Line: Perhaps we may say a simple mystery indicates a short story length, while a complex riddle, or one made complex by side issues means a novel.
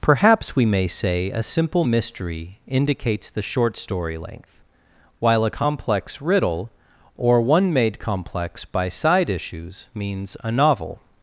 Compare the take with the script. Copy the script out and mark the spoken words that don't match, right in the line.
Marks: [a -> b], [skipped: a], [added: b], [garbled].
Perhaps we may say a simple mystery indicates [a -> the] short story length, while a complex riddle, or one made complex by side issues means a novel.